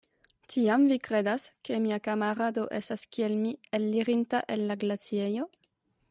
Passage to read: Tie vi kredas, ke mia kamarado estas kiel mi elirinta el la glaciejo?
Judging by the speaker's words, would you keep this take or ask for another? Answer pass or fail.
fail